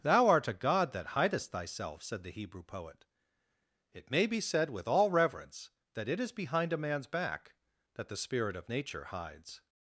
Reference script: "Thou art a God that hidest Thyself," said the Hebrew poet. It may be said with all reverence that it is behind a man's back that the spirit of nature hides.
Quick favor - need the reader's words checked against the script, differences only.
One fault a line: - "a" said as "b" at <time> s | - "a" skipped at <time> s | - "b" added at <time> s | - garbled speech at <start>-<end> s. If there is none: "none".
none